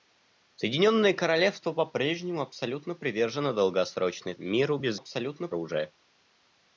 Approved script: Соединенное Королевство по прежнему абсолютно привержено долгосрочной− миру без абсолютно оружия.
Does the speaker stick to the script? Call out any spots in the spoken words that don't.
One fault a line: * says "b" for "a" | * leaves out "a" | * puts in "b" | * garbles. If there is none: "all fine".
all fine